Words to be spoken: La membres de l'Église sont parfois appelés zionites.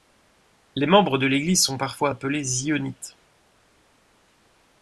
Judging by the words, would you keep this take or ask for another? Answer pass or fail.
fail